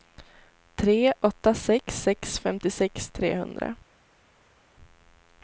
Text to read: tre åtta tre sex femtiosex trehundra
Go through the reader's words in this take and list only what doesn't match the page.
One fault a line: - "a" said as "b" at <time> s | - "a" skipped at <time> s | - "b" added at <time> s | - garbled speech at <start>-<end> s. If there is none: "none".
- "tre" said as "sex" at 1.5 s